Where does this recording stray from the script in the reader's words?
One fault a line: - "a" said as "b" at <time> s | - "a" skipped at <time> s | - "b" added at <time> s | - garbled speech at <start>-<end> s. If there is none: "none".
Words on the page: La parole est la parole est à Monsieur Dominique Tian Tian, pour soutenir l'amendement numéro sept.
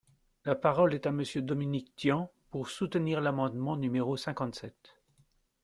- "la parole est" skipped at 1.1 s
- "Tian" skipped at 2.3 s
- "cinquante" added at 4.2 s